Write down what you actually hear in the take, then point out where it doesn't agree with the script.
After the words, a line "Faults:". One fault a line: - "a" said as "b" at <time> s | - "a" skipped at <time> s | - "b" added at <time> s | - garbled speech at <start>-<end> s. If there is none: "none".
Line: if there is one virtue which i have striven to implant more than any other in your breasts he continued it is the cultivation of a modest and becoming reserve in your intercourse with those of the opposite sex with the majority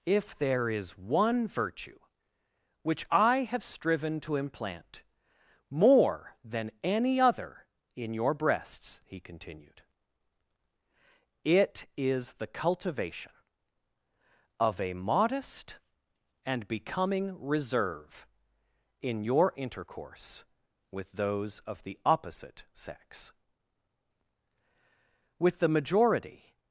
if there is one virtue which i have striven to implant more than any other in your breasts he continued it is the cultivation of a modest and becoming reserve in your intercourse with those of the opposite sex with the majority
Faults:
none